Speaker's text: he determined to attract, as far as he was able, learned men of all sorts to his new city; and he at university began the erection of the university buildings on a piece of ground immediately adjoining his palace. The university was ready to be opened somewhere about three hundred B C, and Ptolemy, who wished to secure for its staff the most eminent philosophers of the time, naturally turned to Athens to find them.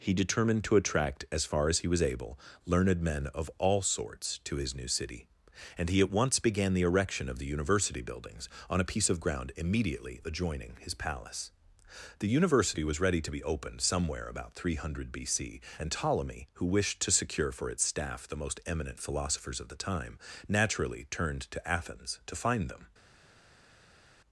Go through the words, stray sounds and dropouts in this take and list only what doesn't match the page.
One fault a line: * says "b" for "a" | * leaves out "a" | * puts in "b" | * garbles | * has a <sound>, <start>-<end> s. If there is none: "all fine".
* says "once" for "university"